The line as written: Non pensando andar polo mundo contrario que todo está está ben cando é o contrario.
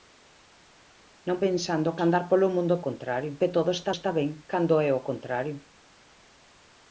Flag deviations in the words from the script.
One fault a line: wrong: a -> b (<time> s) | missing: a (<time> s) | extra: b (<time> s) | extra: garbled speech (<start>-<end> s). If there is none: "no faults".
no faults